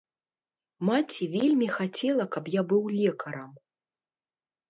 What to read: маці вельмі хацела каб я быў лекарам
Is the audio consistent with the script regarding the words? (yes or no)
yes